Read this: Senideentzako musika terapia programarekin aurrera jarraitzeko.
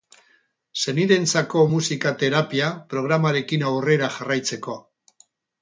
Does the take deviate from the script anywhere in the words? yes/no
no